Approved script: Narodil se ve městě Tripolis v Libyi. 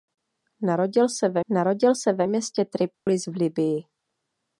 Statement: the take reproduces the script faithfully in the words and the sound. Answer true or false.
false